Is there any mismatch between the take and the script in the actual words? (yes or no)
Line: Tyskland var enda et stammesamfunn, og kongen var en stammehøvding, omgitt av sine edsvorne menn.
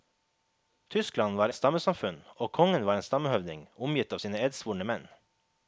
yes